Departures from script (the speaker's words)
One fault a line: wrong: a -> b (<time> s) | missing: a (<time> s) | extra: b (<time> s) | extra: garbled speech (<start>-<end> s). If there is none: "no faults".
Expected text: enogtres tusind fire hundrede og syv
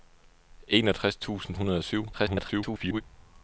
missing: fire (1.6 s)
extra: garbled speech (2.1-3.0 s)